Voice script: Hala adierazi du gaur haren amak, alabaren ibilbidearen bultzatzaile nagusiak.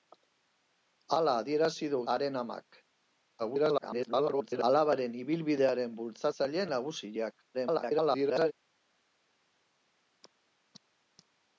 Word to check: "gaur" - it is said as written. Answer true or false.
false